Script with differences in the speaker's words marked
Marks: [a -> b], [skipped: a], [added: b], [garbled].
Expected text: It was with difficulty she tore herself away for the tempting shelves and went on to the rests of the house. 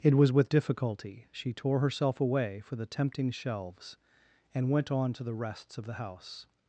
It was with difficulty she tore herself away for the tempting shelves and went on to the rests of the house.